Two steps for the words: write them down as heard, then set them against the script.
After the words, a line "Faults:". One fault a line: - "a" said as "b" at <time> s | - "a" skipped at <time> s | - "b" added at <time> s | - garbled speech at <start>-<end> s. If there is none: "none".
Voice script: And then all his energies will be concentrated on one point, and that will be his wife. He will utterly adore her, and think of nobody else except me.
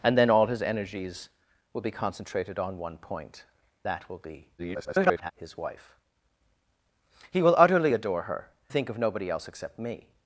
And then all his energies will be concentrated on one point, that will be [garbled] his wife. He will utterly adore her, think of nobody else except me.
Faults:
- "and" skipped at 3.4 s
- garbled speech at 4.6-5.3 s
- "and" skipped at 8.5 s